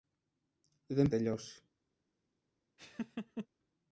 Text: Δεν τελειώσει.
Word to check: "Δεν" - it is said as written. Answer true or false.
true